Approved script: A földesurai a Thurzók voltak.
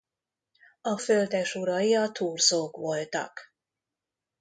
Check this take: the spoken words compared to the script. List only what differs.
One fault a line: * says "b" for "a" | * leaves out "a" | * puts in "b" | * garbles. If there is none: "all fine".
all fine